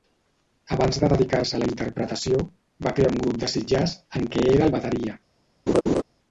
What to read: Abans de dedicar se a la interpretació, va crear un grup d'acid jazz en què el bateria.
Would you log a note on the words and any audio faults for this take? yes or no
yes